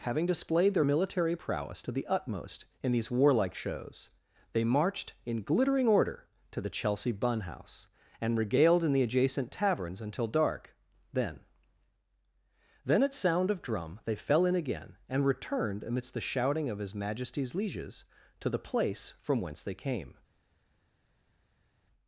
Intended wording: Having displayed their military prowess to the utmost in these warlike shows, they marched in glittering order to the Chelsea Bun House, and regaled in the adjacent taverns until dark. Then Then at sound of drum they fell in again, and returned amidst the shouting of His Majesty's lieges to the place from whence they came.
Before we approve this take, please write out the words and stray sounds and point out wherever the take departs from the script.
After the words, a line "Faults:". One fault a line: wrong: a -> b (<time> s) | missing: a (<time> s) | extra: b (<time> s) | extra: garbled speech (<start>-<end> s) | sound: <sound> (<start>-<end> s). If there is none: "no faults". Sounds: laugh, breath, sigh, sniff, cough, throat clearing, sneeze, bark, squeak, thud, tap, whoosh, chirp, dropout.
Having displayed their military prowess to the utmost in these warlike shows, they marched in glittering order to the Chelsea Bun House, and regaled in the adjacent taverns until dark. Then Then at sound of drum they fell in again, and returned amidst the shouting of His Majesty's lieges to the place from whence they came.
Faults:
no faults